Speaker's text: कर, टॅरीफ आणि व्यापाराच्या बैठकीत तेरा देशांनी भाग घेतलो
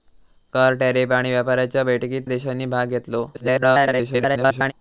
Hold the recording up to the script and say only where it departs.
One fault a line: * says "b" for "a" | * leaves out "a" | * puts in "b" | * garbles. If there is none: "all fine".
* leaves out "तेरा"
* garbles